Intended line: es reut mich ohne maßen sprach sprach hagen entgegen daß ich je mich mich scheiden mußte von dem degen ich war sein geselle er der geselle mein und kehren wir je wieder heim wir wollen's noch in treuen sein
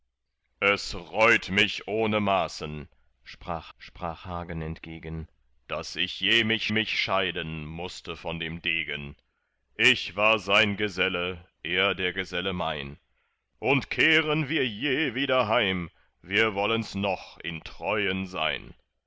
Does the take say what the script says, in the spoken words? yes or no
yes